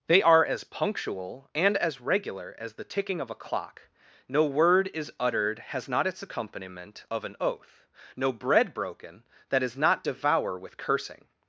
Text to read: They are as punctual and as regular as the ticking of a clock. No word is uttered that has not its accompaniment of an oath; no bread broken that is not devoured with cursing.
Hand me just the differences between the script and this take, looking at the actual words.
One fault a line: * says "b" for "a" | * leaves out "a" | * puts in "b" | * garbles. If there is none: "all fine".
* leaves out "that"
* says "devour" for "devoured"